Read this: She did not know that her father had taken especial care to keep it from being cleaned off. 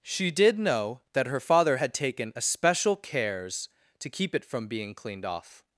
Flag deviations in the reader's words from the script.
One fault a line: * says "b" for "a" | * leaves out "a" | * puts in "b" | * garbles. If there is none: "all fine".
* leaves out "not"
* says "cares" for "care"